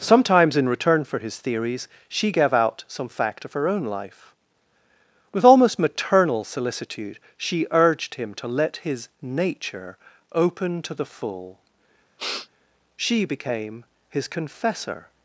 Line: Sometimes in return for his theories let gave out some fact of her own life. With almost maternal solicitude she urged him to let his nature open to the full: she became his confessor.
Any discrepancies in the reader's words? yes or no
yes